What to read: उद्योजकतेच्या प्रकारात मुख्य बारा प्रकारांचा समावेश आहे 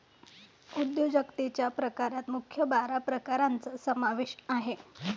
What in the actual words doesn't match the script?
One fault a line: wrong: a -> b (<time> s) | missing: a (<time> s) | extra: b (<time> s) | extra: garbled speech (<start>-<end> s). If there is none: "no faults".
no faults